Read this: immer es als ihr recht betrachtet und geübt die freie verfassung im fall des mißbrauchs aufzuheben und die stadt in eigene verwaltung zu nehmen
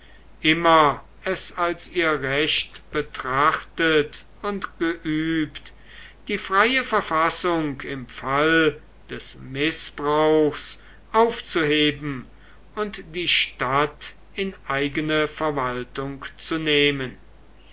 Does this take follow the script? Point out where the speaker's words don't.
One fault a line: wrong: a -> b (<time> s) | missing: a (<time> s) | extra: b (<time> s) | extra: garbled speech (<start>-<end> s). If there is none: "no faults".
no faults